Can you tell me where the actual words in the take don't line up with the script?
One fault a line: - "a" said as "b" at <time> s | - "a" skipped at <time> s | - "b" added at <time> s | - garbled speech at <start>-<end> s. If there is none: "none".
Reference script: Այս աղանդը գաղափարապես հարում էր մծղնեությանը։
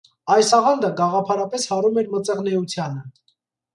none